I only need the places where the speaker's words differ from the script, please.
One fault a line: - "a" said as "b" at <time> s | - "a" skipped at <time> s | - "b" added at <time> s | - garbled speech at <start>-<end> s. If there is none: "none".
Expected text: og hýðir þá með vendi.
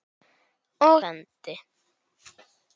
- "hýðir þá með" skipped at 1.0 s